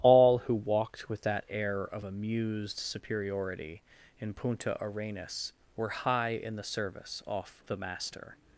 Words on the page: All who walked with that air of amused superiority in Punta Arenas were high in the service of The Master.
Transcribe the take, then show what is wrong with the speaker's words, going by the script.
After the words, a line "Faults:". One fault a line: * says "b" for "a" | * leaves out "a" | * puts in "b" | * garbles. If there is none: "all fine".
All who walked with that air of amused superiority in Punta Arenas were high in the service off The Master.
Faults:
* says "off" for "of"